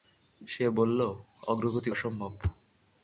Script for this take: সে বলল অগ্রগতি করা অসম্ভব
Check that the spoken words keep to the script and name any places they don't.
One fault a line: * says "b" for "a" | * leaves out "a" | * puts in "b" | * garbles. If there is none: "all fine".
* leaves out "করা"